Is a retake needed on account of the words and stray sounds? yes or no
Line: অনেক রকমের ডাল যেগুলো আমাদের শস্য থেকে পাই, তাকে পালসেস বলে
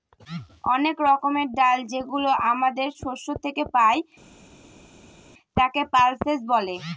no